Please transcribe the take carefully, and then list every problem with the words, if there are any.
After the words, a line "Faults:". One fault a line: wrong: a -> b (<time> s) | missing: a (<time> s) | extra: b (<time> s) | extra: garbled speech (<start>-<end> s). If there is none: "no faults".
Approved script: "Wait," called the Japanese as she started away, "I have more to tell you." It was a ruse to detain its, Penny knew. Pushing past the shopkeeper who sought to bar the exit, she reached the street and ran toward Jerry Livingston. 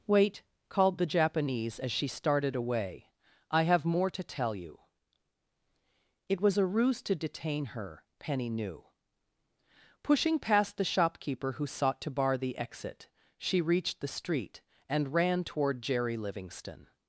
"Wait," called the Japanese as she started away, "I have more to tell you." It was a ruse to detain her, Penny knew. Pushing past the shopkeeper who sought to bar the exit, she reached the street and ran toward Jerry Livingston.
Faults:
wrong: its -> her (7.7 s)